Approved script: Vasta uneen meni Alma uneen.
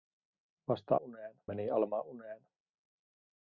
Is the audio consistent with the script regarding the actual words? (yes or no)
yes